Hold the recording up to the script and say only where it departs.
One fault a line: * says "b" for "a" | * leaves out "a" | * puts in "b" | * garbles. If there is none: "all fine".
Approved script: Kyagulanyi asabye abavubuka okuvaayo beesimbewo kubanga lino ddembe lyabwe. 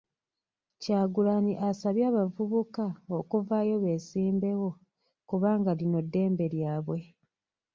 all fine